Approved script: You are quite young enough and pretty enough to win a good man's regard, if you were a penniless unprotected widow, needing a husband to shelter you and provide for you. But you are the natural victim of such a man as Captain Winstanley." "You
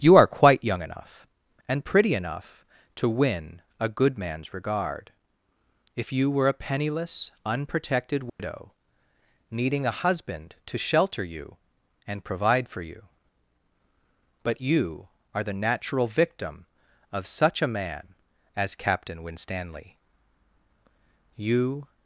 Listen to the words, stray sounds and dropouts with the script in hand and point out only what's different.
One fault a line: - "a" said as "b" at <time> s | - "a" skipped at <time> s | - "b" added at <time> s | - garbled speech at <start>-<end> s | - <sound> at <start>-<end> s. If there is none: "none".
- dropout at 8.3-8.4 s